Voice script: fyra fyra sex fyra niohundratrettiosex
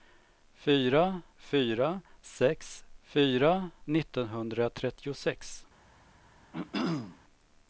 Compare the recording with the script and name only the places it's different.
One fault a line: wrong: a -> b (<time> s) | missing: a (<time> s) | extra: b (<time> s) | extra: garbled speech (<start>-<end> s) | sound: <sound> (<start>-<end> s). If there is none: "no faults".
sound: throat clearing (6.5-7.2 s)